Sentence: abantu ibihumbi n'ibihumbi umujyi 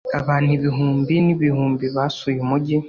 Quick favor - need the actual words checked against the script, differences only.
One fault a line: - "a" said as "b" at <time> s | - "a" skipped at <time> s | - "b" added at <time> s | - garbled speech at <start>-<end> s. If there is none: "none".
- "basuye" added at 2.0 s